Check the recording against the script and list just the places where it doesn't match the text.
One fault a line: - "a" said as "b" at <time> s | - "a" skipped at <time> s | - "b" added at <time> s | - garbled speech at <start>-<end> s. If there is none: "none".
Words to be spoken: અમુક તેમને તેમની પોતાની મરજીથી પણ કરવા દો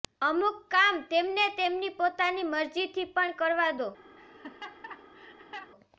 - "કામ" added at 0.7 s